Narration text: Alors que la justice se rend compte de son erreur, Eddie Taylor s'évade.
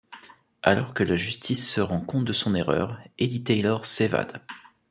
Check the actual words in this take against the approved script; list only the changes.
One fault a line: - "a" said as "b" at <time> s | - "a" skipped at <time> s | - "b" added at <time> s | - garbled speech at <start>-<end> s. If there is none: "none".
none